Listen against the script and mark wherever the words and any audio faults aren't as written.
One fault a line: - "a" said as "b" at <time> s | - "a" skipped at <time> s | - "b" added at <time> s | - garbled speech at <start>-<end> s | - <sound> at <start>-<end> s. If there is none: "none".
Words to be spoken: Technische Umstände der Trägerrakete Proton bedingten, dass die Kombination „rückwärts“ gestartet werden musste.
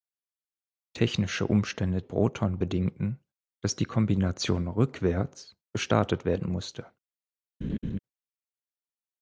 - "der Trägerrakete" skipped at 2.0 s
- laugh at 7.6-8.0 s